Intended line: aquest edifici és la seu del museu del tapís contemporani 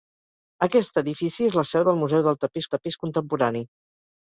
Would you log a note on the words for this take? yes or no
yes